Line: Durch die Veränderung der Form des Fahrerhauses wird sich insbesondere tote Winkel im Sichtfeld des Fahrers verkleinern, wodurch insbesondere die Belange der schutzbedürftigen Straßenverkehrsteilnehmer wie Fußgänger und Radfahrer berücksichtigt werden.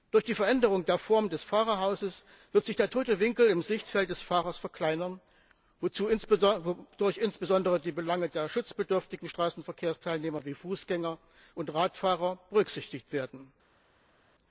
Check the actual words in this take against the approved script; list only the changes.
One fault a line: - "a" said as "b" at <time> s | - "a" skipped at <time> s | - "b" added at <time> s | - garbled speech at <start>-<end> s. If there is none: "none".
- "insbesondere" said as "der" at 2.8 s